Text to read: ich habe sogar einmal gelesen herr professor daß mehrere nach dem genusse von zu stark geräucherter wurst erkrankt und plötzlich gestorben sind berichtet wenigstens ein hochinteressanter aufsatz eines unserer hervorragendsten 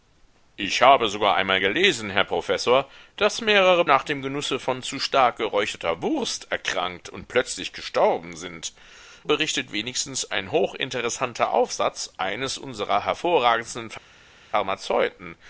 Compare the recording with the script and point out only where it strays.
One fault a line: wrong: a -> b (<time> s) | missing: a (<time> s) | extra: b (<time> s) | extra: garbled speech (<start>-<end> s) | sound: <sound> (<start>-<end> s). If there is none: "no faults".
no faults